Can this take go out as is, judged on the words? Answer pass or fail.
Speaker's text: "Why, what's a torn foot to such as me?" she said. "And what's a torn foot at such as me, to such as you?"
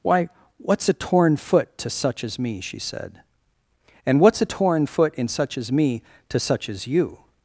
fail